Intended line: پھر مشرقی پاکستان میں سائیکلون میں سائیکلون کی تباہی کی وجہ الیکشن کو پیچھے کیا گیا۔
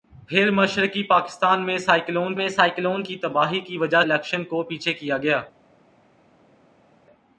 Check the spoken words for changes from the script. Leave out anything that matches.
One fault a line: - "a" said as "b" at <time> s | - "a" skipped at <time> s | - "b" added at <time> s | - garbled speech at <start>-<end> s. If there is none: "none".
none